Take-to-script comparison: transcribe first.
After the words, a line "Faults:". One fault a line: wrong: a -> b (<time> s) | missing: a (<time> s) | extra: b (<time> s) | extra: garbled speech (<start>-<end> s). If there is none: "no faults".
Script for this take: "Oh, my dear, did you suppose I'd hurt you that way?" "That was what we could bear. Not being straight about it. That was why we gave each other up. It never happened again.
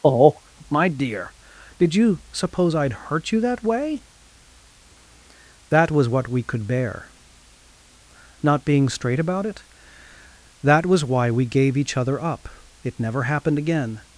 "Oh, my dear, did you suppose I'd hurt you that way?" "That was what we could bear. Not being straight about it. That was why we gave each other up. It never happened again.
Faults:
no faults